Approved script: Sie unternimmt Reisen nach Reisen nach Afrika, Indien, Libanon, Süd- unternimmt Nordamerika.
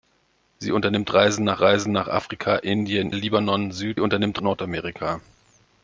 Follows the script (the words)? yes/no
yes